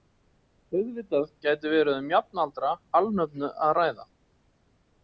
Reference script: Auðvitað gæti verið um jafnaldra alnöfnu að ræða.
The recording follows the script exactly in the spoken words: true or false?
true